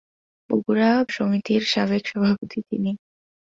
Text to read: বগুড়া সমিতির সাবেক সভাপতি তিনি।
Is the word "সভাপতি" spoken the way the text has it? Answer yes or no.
yes